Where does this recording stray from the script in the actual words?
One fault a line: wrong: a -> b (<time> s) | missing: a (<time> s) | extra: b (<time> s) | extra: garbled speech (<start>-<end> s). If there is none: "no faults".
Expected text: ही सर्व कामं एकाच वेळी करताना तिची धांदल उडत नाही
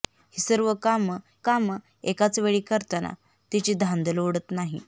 extra: कामं (1.4 s)